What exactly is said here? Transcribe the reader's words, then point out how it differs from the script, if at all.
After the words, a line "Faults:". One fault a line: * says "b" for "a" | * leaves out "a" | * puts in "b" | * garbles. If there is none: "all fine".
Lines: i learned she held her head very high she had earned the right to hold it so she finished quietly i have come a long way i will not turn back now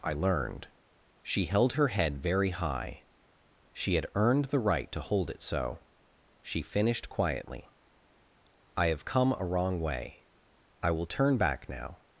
i learned she held her head very high she had earned the right to hold it so she finished quietly i have come a wrong way i will turn back now
Faults:
* says "wrong" for "long"
* leaves out "not"